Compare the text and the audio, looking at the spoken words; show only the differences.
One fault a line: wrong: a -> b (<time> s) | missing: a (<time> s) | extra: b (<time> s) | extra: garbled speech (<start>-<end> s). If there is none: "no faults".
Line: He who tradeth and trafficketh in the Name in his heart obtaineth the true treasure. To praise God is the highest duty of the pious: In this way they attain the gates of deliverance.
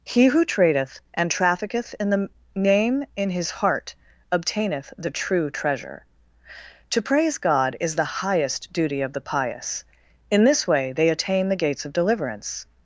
no faults